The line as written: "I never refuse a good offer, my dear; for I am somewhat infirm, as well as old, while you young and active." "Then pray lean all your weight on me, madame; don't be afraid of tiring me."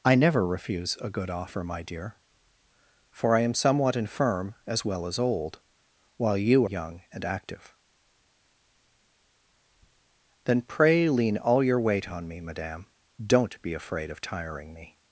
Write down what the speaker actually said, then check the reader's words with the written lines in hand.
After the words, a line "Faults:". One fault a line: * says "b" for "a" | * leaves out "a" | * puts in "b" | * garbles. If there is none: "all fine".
"I never refuse a good offer, my dear; for I am somewhat infirm, as well as old, while you young and active." "Then pray lean all your weight on me, madame; don't be afraid of tiring me."
Faults:
all fine